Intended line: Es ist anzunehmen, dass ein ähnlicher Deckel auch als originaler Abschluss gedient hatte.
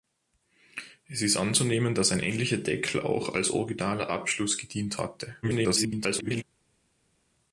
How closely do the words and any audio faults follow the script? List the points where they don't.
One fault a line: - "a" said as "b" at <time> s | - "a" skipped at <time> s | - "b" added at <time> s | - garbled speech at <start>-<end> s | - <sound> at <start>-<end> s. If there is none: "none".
- garbled speech at 5.4-6.4 s